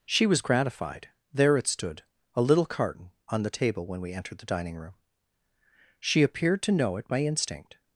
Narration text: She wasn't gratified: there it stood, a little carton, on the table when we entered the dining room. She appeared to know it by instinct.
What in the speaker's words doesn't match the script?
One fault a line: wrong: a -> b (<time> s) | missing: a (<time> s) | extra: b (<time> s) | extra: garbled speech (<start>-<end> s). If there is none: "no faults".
wrong: wasn't -> was (0.2 s)